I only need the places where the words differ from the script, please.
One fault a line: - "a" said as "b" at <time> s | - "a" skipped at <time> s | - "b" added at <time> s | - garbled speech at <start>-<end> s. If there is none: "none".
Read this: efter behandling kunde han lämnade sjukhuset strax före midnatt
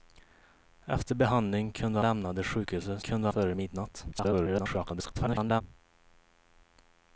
- "han" skipped at 2.0 s
- "strax" said as "kunde" at 3.0 s
- garbled speech at 4.1-5.6 s